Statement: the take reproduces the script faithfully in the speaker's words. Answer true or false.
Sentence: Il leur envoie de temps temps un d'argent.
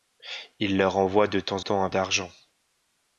true